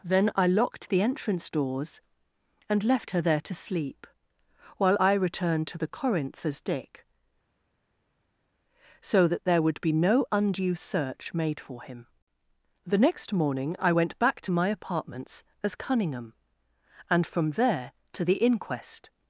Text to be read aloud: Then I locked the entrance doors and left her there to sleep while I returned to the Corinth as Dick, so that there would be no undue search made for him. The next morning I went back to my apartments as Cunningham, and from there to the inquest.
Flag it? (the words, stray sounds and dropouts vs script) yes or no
no